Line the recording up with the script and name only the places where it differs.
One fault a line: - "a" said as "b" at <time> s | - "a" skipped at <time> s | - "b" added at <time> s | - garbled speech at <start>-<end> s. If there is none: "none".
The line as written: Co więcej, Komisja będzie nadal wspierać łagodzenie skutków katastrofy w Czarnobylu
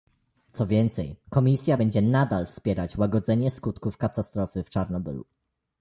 none